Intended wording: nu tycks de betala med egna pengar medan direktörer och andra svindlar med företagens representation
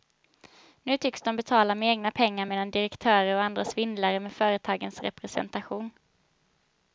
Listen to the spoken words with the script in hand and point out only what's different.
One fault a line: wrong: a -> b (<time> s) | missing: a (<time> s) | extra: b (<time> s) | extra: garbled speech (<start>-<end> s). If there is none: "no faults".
no faults